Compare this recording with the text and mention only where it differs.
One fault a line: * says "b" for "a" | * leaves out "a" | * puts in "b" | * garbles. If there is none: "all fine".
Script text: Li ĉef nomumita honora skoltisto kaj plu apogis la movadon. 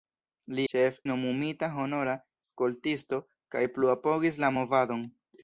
all fine